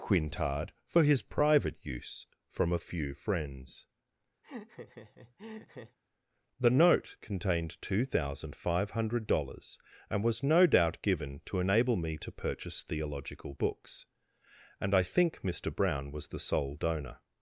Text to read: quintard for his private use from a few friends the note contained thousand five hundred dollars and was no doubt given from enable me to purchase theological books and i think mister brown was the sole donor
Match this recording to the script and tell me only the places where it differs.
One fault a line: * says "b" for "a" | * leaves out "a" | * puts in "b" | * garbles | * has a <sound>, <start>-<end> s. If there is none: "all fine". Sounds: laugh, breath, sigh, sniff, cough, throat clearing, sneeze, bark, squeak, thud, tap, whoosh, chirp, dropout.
* has a laugh, 4.4-6.0 s
* puts in "two"
* says "to" for "from"